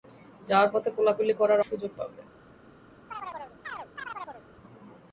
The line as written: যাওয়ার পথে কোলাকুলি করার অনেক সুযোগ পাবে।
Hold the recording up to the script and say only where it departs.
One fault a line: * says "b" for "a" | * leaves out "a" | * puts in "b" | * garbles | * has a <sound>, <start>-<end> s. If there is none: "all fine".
* leaves out "অনেক"
* has a chirp, 3.1-4.5 s